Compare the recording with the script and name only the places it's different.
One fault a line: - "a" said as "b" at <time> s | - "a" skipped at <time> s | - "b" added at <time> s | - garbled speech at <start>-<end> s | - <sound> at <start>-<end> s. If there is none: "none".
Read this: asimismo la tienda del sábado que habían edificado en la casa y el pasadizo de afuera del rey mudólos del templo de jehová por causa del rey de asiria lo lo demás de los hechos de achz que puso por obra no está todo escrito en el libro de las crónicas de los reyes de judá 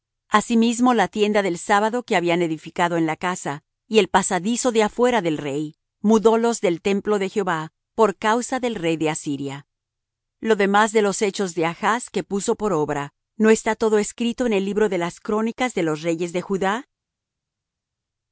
- "lo" skipped at 10.5 s